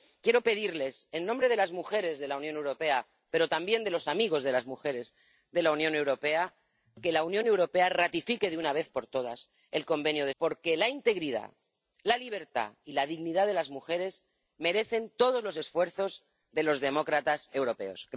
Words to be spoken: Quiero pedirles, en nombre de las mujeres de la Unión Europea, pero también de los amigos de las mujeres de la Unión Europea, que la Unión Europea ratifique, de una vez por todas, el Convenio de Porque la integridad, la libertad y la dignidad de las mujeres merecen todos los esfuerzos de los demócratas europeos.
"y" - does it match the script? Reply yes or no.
yes